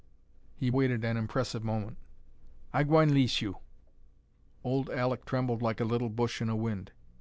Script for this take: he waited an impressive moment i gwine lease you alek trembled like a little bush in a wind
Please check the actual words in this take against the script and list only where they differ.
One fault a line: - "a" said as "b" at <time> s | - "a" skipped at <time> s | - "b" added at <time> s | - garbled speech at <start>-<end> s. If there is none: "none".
- "old" added at 4.6 s